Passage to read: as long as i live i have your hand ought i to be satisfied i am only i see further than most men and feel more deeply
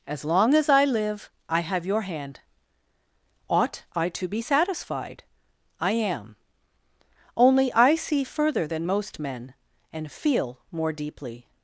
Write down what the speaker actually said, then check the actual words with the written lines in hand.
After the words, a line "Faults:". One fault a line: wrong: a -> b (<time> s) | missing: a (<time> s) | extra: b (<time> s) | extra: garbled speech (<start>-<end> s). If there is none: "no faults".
as long as i live i have your hand ought i to be satisfied i am only i see further than most men and feel more deeply
Faults:
no faults